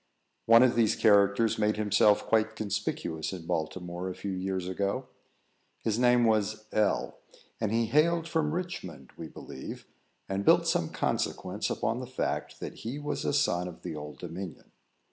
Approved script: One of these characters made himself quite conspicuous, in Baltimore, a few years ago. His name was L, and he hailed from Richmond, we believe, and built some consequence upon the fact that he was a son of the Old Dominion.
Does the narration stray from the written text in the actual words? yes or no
no